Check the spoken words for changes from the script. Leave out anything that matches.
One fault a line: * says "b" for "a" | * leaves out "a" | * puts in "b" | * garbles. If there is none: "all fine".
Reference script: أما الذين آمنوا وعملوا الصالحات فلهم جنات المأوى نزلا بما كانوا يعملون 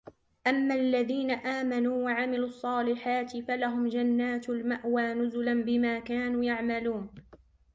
all fine